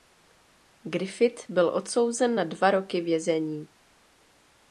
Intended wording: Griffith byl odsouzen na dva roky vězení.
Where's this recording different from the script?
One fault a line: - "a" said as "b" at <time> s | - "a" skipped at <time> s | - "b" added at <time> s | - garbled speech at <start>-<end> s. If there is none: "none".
none